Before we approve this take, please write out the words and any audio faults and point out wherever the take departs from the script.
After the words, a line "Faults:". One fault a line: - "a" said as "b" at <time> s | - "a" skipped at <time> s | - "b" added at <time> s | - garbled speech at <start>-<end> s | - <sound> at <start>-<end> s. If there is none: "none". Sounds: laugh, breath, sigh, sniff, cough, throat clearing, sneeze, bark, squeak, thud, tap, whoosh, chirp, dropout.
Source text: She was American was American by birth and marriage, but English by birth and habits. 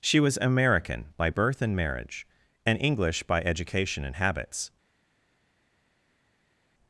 She was American by birth and marriage, and English by education and habits.
Faults:
- "was American" skipped at 1.1 s
- "but" said as "and" at 2.7 s
- "birth" said as "education" at 3.4 s